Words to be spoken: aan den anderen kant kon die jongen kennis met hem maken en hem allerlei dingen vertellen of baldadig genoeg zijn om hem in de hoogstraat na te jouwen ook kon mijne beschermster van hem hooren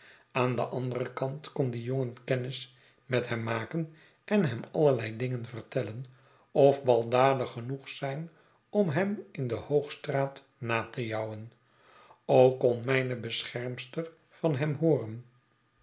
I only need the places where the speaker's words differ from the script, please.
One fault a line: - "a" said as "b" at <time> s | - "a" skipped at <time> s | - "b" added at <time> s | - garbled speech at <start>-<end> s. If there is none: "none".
none